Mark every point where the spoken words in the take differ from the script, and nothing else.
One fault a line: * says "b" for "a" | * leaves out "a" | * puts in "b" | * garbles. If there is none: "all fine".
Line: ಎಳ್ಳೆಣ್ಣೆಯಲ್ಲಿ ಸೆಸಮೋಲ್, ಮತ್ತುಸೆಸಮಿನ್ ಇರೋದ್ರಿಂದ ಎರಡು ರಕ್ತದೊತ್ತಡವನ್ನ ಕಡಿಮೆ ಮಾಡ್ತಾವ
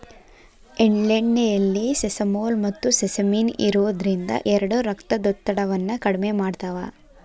all fine